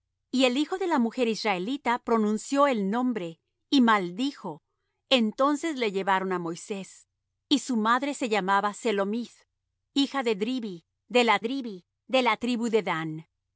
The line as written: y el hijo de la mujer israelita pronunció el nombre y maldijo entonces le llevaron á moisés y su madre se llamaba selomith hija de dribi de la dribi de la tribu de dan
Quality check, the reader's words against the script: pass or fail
pass